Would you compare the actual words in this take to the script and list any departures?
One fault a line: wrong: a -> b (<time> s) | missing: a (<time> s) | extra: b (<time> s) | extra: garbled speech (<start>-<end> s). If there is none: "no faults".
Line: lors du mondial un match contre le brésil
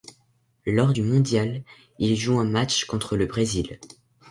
extra: il joue (2.0 s)